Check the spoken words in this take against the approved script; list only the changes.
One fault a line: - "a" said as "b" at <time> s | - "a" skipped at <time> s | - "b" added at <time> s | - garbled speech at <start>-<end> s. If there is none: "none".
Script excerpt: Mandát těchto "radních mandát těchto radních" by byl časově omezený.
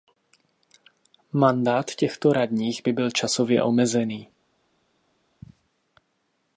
- "mandát těchto radních" skipped at 2.8 s